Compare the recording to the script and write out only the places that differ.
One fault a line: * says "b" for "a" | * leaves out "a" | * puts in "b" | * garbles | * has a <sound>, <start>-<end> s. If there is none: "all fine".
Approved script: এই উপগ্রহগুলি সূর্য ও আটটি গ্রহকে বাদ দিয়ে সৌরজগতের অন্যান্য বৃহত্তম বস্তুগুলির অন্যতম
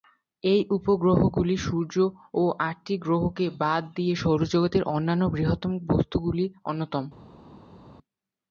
all fine